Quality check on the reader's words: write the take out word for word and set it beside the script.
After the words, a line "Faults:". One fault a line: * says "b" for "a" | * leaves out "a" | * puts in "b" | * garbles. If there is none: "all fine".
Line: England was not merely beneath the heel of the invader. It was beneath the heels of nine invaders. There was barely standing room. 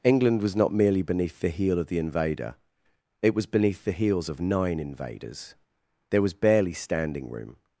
England was not merely beneath the heel of the invader. It was beneath the heels of nine invaders. There was barely standing room.
Faults:
all fine